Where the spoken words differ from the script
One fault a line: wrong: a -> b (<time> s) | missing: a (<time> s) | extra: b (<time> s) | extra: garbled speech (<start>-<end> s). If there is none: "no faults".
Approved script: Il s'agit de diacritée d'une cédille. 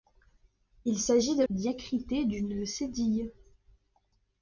no faults